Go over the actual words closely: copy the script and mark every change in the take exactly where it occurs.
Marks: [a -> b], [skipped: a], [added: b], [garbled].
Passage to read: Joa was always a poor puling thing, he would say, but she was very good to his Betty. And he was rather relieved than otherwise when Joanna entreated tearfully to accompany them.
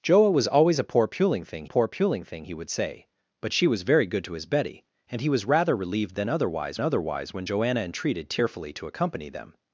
Joa was always a poor puling thing, [added: poor puling thing] he would say, but she was very good to his Betty. And he was rather relieved than otherwise [added: otherwise] when Joanna entreated tearfully to accompany them.